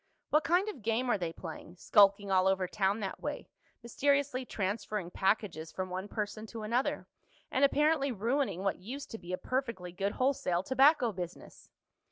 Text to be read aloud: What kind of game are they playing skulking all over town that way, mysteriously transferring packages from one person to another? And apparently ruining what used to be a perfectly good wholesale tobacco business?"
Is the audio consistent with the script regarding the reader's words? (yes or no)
yes